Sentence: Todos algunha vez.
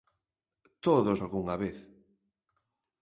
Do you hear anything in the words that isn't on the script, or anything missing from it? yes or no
no